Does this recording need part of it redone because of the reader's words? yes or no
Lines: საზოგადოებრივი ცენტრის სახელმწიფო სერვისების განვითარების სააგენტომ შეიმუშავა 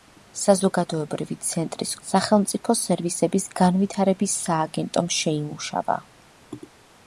no